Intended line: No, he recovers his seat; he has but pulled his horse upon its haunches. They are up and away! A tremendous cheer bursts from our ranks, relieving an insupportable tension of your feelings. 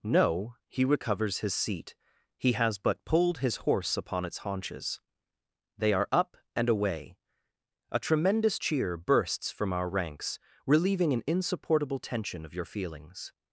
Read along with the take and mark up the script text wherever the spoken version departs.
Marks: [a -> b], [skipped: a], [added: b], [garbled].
No, he recovers his seat; he has but pulled his horse upon its haunches. They are up and away! A tremendous cheer bursts from our ranks, relieving an insupportable tension of your feelings.